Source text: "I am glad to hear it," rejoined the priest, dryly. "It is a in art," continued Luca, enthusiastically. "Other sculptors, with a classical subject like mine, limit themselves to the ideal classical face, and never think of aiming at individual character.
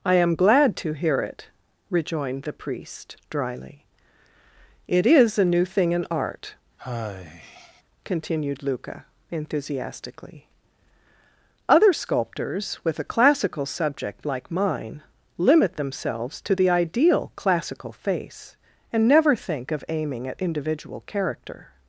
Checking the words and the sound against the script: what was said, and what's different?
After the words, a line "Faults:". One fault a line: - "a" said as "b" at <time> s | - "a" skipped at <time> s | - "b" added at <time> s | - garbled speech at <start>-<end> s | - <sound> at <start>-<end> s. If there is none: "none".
"I am glad to hear it," rejoined the priest, dryly. "It is a new thing in art," continued Luca, enthusiastically. "Other sculptors, with a classical subject like mine, limit themselves to the ideal classical face, and never think of aiming at individual character.
Faults:
- "new thing" added at 5.5 s
- sigh at 6.8-7.8 s